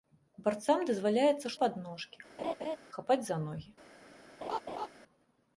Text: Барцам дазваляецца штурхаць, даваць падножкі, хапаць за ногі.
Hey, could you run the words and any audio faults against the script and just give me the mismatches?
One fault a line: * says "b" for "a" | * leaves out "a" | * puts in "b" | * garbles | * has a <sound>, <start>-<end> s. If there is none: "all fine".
* leaves out "штурхаць даваць"
* has a laugh, 2.4-2.8 s
* has a laugh, 4.4-4.9 s